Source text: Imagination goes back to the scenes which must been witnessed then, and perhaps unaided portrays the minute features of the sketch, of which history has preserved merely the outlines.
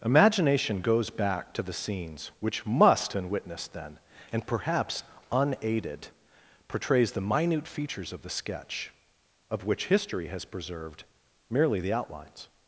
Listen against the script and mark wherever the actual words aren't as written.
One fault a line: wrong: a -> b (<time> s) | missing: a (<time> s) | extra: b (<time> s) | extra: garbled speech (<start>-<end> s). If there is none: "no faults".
no faults